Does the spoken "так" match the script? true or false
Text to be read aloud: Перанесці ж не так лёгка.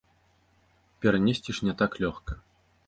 true